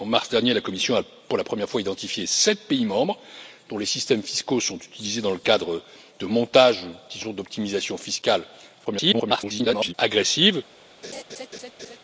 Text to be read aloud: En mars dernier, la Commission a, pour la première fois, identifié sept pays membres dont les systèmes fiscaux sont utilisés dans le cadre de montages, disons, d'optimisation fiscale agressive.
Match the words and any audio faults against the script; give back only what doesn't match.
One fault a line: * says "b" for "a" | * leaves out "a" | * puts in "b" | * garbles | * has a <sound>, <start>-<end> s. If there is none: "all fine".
* garbles
* has a laugh, 11.0-12.0 s